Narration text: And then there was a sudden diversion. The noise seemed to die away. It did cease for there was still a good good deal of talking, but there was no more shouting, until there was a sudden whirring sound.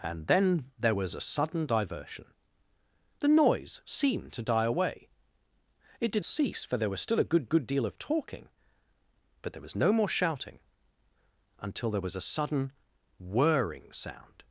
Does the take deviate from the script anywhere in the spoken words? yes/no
no